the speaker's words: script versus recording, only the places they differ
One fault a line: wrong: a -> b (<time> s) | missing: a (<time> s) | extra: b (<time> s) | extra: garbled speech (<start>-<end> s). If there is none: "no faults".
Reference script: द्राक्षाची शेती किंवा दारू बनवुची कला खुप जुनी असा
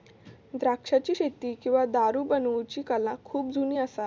no faults